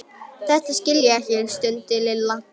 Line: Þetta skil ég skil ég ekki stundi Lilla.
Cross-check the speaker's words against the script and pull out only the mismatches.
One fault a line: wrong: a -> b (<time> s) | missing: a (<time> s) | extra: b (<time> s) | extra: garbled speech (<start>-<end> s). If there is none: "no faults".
missing: skil ég (1.2 s)